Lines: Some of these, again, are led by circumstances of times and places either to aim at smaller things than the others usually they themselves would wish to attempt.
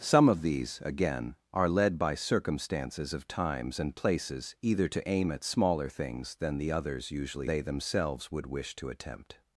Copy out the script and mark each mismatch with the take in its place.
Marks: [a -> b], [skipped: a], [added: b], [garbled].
Some of these, again, are led by circumstances of times and places either to aim at smaller things than the others usually they themselves would wish to attempt.